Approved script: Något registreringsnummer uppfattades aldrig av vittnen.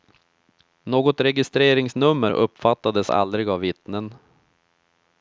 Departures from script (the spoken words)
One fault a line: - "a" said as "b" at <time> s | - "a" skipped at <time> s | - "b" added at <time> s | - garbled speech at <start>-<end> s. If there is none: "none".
none